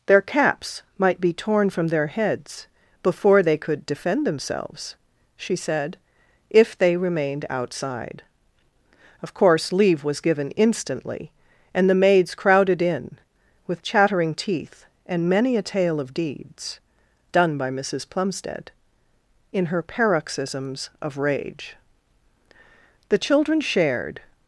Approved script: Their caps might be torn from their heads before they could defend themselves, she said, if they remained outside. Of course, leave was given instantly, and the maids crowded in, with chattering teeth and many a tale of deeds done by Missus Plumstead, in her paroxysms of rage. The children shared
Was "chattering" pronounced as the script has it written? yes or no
yes